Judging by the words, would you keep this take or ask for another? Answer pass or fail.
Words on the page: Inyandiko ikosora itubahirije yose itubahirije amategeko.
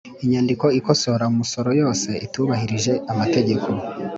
fail